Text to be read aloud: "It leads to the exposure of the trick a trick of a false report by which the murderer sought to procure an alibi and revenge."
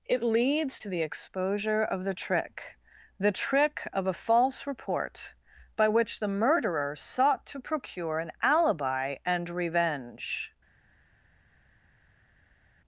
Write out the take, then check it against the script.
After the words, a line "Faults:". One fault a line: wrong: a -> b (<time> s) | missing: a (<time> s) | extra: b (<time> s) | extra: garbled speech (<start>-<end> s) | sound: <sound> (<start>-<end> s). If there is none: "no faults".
"It leads to the exposure of the trick the trick of a false report by which the murderer sought to procure an alibi and revenge."
Faults:
wrong: a -> the (3.2 s)